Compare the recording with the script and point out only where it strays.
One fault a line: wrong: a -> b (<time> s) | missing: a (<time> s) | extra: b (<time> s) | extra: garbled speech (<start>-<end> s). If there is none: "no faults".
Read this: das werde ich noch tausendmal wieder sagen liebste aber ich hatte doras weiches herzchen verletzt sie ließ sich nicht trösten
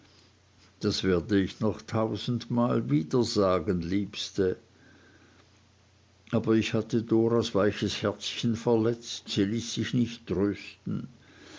no faults